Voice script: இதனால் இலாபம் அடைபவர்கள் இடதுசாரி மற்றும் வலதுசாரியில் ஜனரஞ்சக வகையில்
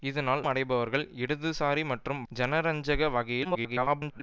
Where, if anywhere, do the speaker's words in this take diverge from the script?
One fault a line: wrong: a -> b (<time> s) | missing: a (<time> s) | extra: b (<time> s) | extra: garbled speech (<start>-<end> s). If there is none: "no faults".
missing: இலாபம் (0.4 s)
missing: வலதுசாரியில் (2.2 s)
extra: garbled speech (3.4-4.2 s)